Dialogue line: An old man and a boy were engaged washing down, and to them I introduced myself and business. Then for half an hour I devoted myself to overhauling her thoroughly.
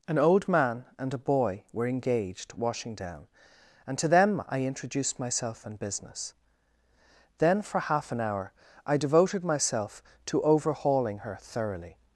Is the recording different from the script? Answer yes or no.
no